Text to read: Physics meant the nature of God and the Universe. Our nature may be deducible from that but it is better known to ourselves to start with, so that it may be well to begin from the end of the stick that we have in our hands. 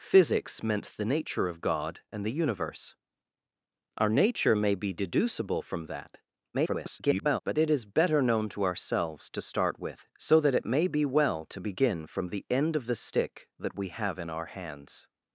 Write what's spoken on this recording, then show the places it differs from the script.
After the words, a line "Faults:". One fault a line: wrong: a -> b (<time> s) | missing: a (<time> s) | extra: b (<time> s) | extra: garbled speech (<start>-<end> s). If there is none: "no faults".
Physics meant the nature of God and the Universe. Our nature may be deducible from that [garbled] but it is better known to ourselves to start with, so that it may be well to begin from the end of the stick that we have in our hands.
Faults:
extra: garbled speech (6.5-7.4 s)